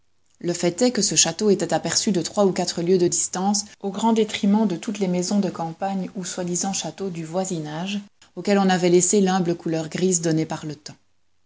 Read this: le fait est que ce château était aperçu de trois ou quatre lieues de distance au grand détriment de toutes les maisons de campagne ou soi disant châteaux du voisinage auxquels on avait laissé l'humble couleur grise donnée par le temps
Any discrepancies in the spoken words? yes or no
no